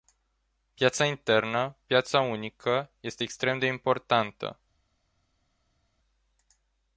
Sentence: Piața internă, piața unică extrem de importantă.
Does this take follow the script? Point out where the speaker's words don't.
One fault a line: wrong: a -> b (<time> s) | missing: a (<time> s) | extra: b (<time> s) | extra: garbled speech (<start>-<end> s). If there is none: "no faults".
extra: este (3.0 s)